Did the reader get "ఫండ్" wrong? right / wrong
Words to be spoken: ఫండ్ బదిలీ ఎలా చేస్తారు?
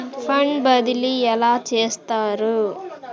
right